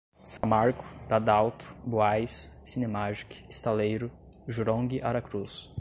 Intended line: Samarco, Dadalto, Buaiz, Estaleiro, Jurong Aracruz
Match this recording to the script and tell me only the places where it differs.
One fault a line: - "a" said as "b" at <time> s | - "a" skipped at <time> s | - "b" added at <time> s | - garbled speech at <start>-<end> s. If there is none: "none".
- "Cinemagic" added at 2.6 s